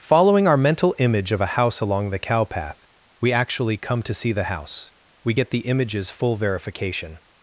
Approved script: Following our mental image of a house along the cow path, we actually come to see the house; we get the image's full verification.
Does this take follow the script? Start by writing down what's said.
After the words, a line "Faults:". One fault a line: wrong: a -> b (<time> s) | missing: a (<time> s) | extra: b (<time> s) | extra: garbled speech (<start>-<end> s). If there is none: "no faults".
Following our mental image of a house along the cow path, we actually come to see the house; we get the image's full verification.
Faults:
no faults